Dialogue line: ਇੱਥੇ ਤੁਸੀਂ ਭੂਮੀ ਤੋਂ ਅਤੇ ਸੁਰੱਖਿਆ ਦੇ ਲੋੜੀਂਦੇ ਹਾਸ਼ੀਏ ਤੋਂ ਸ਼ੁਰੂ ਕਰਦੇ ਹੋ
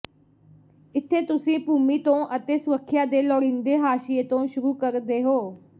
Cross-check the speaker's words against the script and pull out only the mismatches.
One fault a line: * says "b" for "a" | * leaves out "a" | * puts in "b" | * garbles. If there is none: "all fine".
all fine